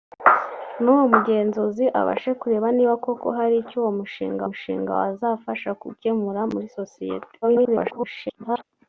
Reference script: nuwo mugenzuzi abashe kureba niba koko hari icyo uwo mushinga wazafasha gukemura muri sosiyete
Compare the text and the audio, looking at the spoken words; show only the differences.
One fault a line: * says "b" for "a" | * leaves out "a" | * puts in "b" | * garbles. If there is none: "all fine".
* puts in "mushinga"
* garbles